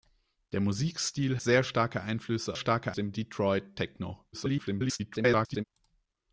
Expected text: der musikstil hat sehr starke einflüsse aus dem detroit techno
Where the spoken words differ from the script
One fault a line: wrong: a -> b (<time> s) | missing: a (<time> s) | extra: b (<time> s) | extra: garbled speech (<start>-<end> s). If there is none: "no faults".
missing: hat (1.4 s)
wrong: aus -> starke (2.5 s)
extra: garbled speech (4.3-5.6 s)